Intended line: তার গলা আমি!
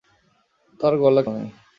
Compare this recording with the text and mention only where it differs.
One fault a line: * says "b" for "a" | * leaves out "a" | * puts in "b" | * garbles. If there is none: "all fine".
all fine